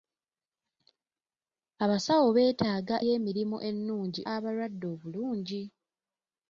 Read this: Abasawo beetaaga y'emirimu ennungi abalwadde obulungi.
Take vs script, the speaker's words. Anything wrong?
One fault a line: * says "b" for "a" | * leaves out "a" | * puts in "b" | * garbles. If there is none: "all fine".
all fine